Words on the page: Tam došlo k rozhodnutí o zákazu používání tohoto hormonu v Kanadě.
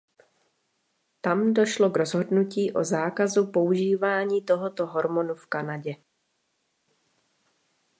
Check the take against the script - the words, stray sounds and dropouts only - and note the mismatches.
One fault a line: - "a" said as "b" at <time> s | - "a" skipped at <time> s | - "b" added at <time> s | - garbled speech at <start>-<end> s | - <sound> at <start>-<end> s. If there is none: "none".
none